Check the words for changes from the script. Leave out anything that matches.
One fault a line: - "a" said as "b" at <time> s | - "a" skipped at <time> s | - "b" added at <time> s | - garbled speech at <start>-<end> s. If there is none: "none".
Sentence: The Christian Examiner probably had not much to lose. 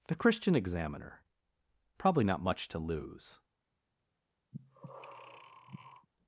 - "had" skipped at 2.2 s